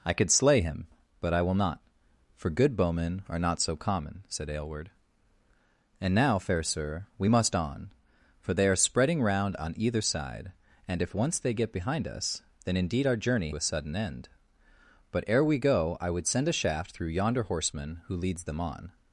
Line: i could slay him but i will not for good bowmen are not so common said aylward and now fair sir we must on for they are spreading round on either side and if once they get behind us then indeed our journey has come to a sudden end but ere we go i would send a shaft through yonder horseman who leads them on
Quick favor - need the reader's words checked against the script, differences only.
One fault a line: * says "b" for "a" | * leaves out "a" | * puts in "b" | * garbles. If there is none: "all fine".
* leaves out "has come to"